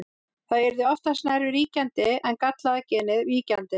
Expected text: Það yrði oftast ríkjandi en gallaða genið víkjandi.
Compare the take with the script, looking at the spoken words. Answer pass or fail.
fail